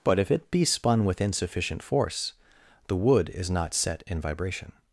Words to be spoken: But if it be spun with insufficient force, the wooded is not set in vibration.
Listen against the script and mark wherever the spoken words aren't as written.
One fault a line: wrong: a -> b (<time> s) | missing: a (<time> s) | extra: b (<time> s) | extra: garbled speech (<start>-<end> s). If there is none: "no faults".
wrong: wooded -> wood (3.0 s)